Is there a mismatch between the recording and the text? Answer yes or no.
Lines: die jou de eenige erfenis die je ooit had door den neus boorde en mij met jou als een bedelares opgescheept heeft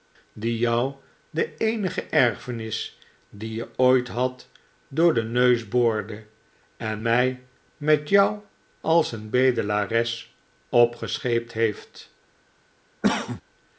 no